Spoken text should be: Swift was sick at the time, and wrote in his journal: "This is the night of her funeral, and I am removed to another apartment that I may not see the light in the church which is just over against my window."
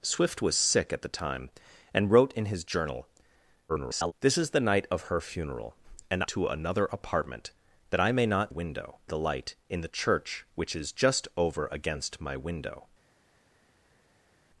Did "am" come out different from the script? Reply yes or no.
yes